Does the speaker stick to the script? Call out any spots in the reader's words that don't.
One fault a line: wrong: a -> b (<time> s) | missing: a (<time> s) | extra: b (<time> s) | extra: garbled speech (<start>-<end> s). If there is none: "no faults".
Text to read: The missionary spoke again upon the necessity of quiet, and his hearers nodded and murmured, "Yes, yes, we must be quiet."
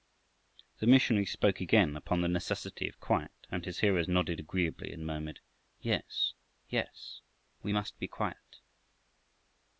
extra: agreeably (4.4 s)